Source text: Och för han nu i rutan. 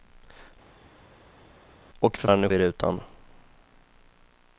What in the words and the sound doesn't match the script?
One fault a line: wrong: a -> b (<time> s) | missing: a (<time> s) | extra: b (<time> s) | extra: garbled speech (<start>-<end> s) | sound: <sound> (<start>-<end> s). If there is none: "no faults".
no faults